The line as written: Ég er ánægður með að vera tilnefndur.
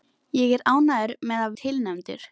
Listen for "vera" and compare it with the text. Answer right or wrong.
wrong